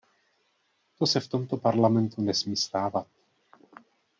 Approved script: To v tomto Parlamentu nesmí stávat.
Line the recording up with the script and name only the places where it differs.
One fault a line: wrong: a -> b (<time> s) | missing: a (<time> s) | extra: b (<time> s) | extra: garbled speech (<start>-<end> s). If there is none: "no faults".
extra: se (1.1 s)